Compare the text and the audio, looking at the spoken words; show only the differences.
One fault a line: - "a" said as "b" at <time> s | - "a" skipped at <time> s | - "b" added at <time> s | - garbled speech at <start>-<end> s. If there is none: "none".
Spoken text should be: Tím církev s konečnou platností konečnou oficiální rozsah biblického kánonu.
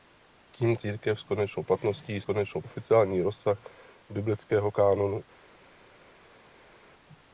none